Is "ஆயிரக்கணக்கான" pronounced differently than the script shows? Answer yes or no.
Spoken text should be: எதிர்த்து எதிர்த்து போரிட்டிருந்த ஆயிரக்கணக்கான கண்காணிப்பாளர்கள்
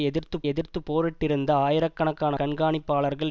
no